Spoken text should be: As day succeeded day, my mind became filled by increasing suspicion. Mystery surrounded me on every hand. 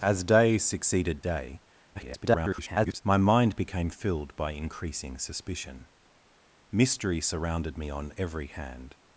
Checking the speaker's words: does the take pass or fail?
fail